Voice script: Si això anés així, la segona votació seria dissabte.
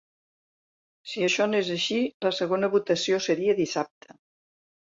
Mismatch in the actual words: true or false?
false